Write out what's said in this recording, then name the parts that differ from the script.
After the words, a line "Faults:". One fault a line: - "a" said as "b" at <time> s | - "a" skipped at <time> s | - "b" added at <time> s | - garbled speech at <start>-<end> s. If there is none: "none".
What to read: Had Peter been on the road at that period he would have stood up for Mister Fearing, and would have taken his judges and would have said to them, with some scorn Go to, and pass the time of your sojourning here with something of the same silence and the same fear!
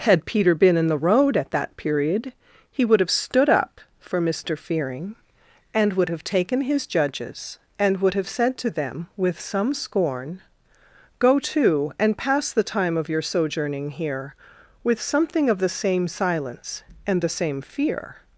Had Peter been in the road at that period he would have stood up for Mister Fearing, and would have taken his judges and would have said to them, with some scorn Go to, and pass the time of your sojourning here with something of the same silence and the same fear!
Faults:
- "on" said as "in" at 0.8 s